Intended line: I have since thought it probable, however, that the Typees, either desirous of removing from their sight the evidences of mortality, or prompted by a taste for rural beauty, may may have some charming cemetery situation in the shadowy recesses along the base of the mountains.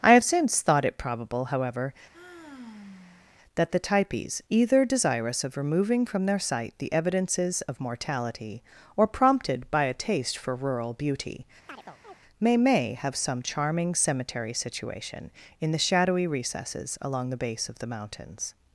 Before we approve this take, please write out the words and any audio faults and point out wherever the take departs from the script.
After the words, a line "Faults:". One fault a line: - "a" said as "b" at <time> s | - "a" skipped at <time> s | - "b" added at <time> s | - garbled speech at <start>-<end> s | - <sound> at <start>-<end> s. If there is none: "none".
I have since thought it probable, however, that the Typees, either desirous of removing from their sight the evidences of mortality, or prompted by a taste for rural beauty, may may have some charming cemetery situation in the shadowy recesses along the base of the mountains.
Faults:
- sigh at 2.1-3.3 s
- chirp at 11.7-12.2 s